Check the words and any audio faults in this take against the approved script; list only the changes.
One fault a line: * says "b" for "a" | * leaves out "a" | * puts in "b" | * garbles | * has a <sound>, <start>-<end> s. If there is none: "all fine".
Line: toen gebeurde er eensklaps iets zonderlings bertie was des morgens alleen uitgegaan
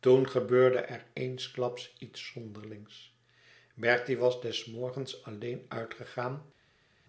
all fine